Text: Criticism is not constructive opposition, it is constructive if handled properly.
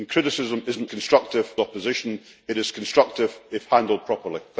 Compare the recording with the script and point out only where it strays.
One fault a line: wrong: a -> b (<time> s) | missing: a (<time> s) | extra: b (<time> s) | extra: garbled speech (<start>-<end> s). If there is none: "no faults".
no faults